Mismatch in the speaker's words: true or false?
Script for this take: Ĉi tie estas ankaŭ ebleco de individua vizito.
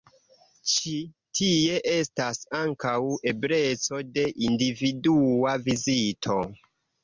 false